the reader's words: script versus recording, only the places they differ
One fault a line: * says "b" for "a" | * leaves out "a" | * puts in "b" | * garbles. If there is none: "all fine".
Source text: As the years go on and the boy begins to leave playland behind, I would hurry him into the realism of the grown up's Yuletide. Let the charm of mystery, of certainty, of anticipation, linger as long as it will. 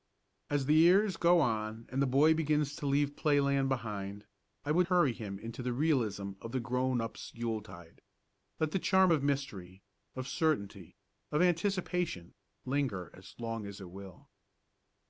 all fine